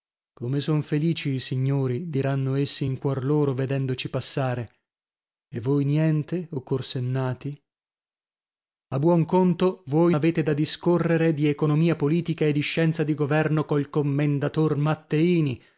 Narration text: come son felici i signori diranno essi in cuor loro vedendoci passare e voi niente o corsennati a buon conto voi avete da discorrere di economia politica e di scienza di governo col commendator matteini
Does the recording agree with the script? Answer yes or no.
yes